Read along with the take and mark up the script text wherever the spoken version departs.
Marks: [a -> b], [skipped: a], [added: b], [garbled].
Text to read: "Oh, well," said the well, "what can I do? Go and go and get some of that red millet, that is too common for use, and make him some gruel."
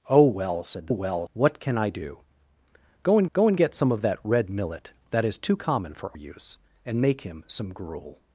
"Oh, well," said the well, "what can I do? Go and go and get some of that red millet, that is too common for use, and make him some gruel."